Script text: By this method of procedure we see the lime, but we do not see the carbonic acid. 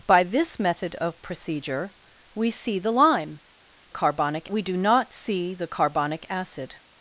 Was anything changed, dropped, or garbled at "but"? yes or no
yes